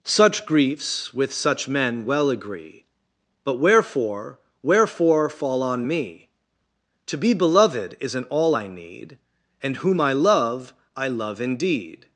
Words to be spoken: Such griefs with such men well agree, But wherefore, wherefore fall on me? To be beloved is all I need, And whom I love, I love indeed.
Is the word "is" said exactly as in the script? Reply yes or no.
no